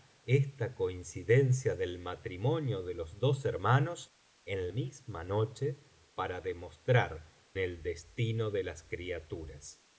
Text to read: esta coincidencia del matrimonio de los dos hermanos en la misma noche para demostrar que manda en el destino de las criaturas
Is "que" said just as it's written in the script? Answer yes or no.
no